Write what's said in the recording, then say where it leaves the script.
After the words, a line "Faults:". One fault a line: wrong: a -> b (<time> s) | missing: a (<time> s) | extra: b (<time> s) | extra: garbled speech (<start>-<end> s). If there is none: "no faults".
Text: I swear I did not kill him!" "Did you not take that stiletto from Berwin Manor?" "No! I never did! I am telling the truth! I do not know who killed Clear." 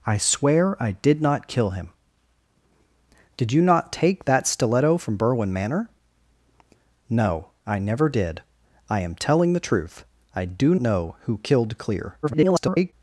I swear I did not kill him!" "Did you not take that stiletto from Berwin Manor?" "No! I never did! I am telling the truth! I do know who killed Clear." [garbled]
Faults:
missing: not (10.8 s)
extra: garbled speech (12.2-12.9 s)